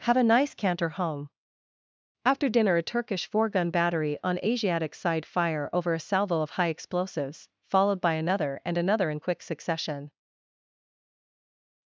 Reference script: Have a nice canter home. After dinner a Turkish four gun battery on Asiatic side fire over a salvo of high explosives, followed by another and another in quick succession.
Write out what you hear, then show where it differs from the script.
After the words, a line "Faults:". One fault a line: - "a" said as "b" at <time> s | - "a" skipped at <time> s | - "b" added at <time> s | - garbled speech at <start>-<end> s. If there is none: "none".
Have a nice canter home. After dinner a Turkish four gun battery on Asiatic side fire over a salvo of high explosives, followed by another and another in quick succession.
Faults:
none